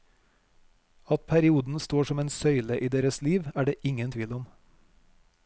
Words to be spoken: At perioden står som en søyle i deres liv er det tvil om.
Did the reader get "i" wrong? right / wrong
right